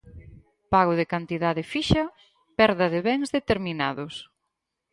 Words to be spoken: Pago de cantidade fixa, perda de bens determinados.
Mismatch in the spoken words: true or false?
false